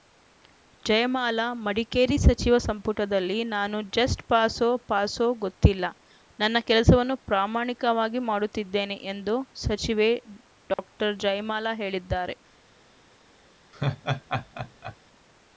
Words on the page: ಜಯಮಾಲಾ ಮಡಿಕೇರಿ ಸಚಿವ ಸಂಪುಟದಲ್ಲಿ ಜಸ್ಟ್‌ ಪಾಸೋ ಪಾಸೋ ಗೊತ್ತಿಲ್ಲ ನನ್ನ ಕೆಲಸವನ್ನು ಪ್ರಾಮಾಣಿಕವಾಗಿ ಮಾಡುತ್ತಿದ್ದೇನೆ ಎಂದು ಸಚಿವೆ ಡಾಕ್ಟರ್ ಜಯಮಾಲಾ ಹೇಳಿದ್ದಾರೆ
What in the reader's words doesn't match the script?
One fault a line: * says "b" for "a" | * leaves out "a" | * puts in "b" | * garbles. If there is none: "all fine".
* puts in "ನಾನು"